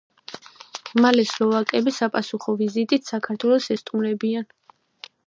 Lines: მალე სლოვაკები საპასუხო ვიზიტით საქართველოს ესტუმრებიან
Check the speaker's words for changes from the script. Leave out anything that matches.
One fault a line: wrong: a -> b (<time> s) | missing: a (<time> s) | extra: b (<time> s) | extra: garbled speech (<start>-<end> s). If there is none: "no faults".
no faults